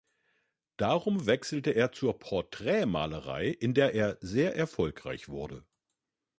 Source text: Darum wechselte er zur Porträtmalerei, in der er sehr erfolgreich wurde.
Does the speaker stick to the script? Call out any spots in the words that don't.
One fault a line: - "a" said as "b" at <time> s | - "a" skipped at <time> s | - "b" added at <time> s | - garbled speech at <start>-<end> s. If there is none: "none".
none